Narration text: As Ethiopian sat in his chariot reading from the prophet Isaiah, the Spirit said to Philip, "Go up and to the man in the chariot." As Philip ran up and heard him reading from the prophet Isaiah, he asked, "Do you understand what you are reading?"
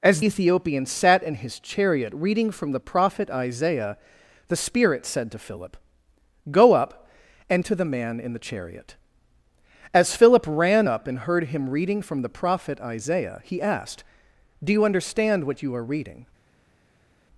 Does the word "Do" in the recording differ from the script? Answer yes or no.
no